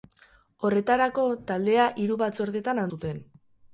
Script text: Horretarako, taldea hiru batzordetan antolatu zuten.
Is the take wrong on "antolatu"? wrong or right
wrong